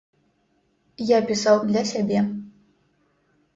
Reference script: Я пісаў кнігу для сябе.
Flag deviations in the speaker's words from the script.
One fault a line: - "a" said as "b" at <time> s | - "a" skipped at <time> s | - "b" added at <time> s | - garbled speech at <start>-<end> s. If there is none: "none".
- "кнігу" skipped at 1.6 s